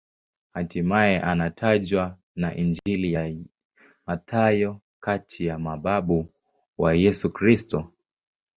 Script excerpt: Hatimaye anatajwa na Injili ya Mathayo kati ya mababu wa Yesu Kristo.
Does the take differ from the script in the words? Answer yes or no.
no